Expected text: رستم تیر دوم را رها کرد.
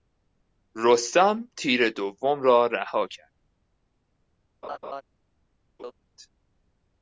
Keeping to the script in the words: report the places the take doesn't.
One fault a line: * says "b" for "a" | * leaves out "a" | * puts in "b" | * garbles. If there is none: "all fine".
all fine